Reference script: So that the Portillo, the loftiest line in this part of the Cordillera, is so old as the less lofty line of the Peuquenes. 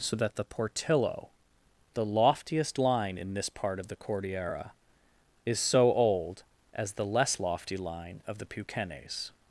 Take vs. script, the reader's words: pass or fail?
pass